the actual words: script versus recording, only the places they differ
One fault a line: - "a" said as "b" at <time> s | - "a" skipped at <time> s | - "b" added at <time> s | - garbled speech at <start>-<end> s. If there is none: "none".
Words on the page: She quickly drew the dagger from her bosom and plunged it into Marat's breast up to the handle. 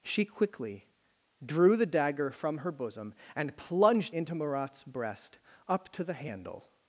- "it" skipped at 4.2 s